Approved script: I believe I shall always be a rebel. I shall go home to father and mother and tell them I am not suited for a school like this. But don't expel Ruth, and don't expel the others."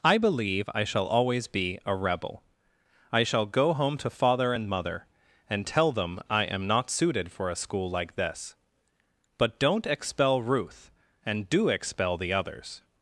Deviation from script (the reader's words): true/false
true